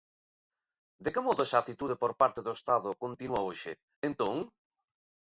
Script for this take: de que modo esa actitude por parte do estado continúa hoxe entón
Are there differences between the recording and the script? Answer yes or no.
no